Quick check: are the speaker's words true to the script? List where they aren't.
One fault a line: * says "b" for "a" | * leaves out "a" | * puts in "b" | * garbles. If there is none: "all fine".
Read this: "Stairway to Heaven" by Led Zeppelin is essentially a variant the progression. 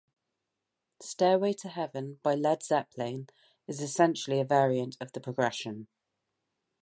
* puts in "of"